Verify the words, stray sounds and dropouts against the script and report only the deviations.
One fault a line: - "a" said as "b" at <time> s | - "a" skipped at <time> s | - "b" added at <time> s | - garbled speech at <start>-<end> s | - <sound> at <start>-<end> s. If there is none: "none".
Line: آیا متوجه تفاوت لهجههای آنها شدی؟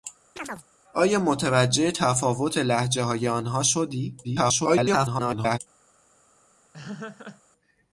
- chirp at 0.4-0.7 s
- garbled speech at 4.2-5.6 s
- laugh at 6.7-7.4 s